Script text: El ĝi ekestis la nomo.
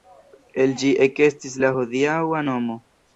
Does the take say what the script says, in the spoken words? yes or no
no